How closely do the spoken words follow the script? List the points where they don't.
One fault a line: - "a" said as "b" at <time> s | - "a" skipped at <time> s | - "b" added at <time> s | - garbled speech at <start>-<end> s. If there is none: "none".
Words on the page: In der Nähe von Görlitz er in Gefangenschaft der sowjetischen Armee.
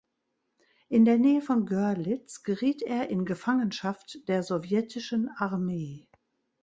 - "geriet" added at 2.4 s